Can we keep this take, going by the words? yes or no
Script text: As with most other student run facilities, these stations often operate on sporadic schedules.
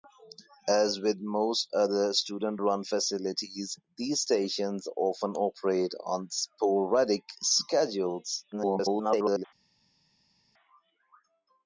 no